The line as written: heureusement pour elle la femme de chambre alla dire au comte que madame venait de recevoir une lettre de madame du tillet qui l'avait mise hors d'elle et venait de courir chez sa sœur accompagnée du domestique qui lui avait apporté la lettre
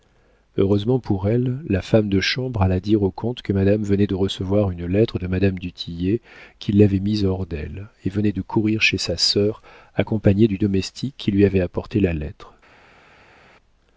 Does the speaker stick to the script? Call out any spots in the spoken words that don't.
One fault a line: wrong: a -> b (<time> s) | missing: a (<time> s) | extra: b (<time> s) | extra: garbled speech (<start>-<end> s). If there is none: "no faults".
no faults